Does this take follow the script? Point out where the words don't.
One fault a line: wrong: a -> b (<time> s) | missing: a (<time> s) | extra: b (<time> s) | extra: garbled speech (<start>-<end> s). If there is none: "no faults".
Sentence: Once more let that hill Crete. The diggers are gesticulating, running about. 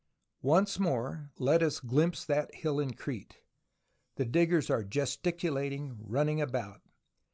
extra: us glimpse (1.6 s)
extra: in (2.8 s)